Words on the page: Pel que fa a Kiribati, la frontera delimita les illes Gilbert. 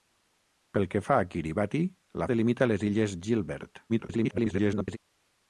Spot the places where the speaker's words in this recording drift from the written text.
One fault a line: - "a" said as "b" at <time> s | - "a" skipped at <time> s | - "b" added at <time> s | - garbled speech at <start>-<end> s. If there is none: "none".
- "frontera" skipped at 2.3 s
- garbled speech at 3.9-5.0 s